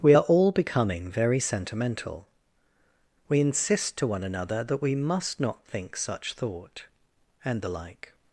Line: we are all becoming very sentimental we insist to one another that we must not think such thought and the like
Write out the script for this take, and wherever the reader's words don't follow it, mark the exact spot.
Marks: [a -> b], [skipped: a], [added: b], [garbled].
we are all becoming very sentimental we insist to one another that we must not think such thought and the like